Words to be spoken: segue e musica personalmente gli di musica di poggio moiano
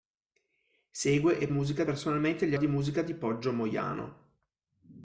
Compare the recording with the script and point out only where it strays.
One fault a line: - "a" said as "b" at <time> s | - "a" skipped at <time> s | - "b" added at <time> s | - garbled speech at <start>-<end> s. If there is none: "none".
none